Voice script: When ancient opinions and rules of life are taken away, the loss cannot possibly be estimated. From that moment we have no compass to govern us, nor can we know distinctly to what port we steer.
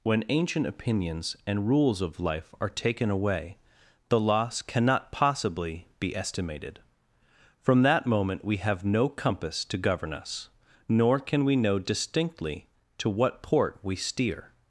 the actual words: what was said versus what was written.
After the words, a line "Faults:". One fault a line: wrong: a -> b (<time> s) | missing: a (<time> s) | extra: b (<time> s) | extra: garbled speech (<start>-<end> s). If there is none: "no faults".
When ancient opinions and rules of life are taken away, the loss cannot possibly be estimated. From that moment we have no compass to govern us, nor can we know distinctly to what port we steer.
Faults:
no faults